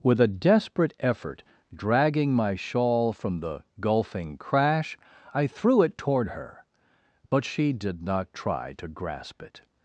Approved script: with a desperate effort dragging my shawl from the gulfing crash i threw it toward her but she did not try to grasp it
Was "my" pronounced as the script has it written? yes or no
yes